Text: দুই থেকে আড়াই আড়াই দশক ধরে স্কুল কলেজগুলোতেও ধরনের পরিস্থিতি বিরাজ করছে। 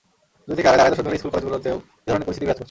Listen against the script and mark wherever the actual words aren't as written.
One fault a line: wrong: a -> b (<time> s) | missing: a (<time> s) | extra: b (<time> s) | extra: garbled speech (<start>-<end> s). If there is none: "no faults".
no faults